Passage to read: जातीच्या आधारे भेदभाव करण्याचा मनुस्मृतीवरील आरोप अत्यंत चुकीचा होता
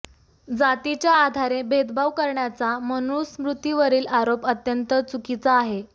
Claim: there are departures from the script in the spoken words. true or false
true